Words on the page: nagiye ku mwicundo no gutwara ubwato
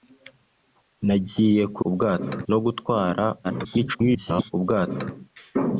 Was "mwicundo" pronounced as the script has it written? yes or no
no